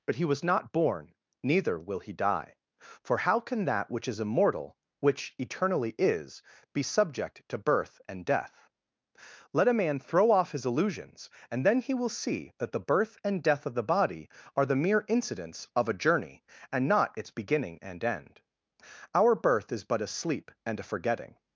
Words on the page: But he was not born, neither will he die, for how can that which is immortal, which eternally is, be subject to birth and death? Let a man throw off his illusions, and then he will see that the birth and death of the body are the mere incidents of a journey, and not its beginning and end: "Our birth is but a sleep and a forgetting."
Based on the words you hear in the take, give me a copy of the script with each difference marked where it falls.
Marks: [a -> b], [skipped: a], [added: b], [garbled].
But he was not born, neither will he die, for how can that which is immortal, which eternally is, be subject to birth and death? Let a man throw off his illusions, and then he will see that the birth and death of the body are the mere incidents of a journey, and not its beginning and end: "Our birth is but a sleep and a forgetting."